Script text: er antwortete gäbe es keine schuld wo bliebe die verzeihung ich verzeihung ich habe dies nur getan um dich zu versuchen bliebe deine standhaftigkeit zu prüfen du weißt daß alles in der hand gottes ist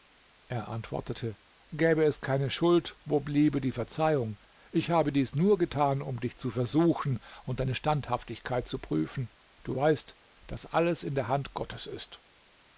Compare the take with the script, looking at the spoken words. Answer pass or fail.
fail